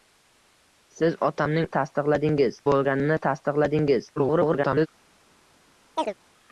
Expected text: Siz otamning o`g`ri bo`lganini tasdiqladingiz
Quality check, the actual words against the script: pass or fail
fail